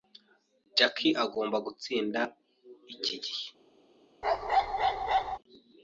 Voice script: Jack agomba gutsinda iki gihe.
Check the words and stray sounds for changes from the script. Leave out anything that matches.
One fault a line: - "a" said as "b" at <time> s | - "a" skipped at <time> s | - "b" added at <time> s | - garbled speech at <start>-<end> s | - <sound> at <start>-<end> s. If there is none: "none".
- bark at 4.2-5.4 s